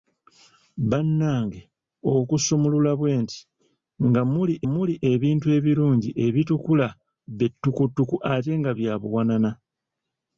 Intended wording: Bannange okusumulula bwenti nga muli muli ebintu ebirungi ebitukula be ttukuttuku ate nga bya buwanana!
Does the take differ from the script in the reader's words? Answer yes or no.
no